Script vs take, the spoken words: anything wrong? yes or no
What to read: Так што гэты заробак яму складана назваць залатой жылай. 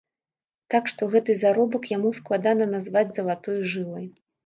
no